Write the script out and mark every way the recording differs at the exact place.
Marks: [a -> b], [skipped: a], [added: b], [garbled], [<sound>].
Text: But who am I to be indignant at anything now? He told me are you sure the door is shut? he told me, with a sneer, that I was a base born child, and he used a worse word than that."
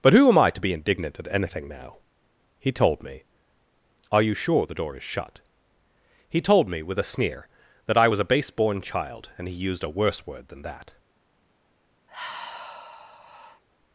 But who am I to be indignant at anything now? He told me are you sure the door is shut? he told me, with a sneer, that I was a base born child, and he used a worse word than that." [sigh]